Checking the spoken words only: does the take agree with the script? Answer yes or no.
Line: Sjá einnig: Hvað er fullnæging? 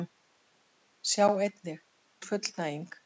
no